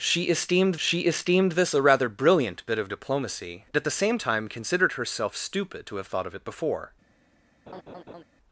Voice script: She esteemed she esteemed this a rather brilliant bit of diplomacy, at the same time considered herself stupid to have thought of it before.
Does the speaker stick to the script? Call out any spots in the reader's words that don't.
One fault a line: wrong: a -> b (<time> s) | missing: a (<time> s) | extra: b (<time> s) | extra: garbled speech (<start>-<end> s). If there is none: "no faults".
no faults